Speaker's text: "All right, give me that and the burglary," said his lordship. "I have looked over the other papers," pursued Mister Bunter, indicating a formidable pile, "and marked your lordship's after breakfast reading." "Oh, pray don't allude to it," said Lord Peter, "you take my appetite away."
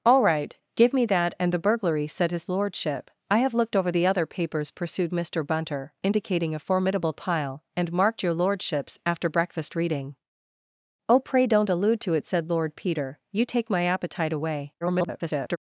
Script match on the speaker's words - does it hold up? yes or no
no